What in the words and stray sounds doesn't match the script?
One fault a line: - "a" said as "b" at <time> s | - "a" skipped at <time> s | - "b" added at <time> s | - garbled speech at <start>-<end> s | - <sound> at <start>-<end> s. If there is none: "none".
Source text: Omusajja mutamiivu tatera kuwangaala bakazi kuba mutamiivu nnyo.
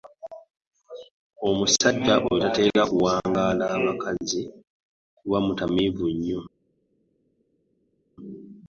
- "mutamiivu" said as "oyo" at 2.3 s